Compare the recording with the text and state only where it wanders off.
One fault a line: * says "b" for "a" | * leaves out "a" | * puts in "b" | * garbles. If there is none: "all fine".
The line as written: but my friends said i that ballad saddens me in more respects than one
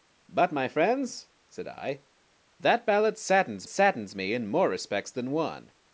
* puts in "saddens"